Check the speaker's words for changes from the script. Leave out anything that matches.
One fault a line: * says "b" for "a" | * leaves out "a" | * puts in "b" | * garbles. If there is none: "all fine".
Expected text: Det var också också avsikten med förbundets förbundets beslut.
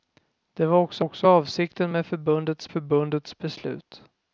all fine